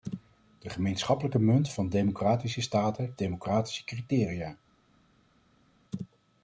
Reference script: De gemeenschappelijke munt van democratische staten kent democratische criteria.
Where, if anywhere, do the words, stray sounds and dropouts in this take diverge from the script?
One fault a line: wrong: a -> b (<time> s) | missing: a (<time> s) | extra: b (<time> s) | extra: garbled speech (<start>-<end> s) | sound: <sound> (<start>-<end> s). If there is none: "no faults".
missing: kent (3.2 s)